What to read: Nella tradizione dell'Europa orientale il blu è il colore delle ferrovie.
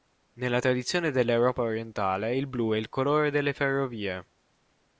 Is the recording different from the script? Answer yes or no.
no